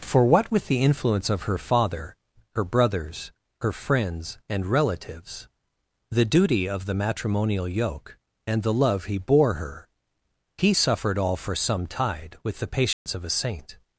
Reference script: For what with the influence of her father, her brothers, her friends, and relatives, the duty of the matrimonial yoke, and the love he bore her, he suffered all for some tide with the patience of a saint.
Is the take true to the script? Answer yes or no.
yes